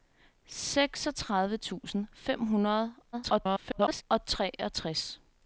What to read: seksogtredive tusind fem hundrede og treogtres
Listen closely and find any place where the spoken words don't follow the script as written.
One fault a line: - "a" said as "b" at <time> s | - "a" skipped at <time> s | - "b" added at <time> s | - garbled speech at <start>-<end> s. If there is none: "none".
- garbled speech at 3.1-4.0 s